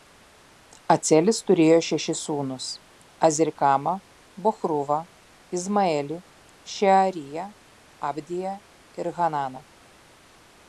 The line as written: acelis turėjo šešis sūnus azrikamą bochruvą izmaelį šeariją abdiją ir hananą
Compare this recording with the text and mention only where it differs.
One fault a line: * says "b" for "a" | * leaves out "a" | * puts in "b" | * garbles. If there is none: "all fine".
all fine